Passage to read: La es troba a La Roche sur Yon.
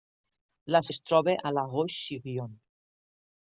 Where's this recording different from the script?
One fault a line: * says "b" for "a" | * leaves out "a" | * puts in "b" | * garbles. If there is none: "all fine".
all fine